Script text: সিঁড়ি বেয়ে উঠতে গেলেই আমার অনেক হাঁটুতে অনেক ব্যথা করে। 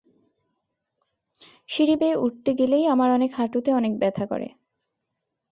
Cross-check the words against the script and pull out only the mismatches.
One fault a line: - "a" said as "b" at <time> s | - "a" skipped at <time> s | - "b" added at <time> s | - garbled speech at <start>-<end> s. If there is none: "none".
none